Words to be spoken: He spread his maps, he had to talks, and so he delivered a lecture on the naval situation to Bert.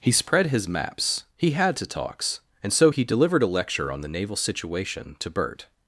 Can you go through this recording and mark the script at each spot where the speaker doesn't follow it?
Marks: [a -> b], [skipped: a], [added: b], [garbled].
He spread his maps, he had to talks, and so he delivered a lecture on the naval situation to Bert.